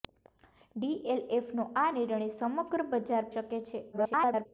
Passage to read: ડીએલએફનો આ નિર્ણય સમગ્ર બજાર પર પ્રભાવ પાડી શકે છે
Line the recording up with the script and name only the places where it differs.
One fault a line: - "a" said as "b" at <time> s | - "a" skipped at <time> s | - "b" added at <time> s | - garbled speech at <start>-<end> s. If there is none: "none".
- "પર પ્રભાવ પાડી" skipped at 3.3 s
- garbled speech at 3.9-4.5 s